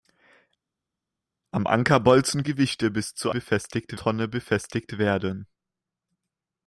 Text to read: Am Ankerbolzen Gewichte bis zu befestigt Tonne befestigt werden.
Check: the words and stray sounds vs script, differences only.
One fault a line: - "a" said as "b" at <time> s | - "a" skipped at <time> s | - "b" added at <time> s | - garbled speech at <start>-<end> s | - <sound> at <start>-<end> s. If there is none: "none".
none